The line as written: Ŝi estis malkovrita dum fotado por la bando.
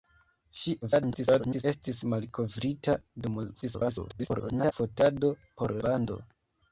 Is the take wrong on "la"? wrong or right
wrong